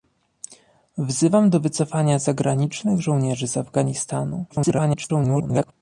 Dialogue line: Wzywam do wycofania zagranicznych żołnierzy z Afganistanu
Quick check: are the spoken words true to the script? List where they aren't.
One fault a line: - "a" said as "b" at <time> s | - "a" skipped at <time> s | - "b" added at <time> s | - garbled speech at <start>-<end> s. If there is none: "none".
- garbled speech at 4.5-5.7 s